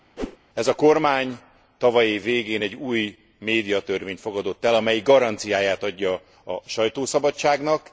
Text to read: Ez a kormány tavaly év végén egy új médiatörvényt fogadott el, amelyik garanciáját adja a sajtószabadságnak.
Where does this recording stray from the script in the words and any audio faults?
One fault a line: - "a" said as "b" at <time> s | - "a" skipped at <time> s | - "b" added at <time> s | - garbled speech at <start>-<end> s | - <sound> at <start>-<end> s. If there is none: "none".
- whoosh at 0.2-0.4 s